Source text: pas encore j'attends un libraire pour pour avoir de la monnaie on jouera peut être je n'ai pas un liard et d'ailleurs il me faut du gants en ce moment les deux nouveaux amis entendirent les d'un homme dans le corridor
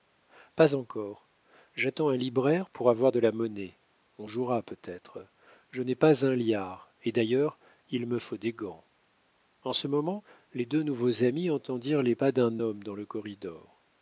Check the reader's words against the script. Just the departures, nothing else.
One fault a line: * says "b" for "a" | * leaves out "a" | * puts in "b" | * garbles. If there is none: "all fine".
* leaves out "pour"
* says "des" for "du"
* puts in "pas"